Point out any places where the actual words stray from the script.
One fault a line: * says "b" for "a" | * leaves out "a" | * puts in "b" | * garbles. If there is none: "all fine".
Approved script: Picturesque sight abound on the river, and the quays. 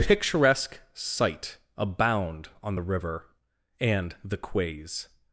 all fine